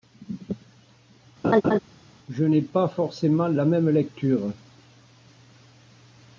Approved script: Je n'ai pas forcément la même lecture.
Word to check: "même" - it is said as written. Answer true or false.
true